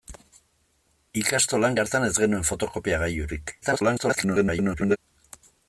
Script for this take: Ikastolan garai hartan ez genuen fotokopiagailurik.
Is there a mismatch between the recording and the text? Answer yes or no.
yes